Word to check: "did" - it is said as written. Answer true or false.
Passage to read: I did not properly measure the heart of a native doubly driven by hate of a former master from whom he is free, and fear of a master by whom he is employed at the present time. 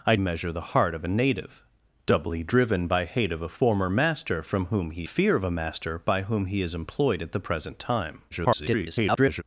false